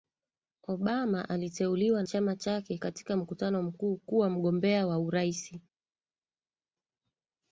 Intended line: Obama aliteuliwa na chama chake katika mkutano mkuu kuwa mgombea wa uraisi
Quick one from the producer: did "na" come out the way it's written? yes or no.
no